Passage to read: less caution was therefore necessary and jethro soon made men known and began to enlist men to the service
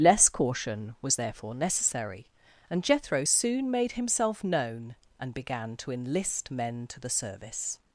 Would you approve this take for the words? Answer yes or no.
no